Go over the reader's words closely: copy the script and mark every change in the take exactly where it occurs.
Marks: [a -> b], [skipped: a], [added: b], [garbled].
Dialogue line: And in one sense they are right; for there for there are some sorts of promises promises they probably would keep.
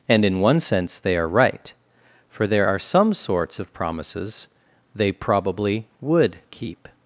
And in one sense they are right; for there [skipped: for there] are some sorts of promises [skipped: promises] they probably would keep.